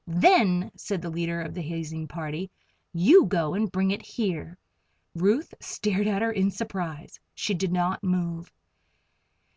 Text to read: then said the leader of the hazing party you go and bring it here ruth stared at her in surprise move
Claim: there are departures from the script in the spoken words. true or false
true